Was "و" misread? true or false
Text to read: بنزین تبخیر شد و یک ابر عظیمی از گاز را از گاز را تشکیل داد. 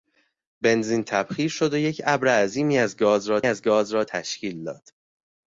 false